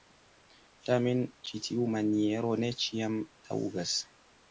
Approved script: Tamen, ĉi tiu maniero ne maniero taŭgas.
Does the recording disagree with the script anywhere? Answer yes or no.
yes